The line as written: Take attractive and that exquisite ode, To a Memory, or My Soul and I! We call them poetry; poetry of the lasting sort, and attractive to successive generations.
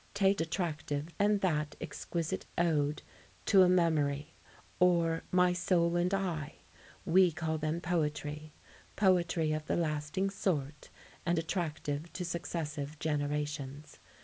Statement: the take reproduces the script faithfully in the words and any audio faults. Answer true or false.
true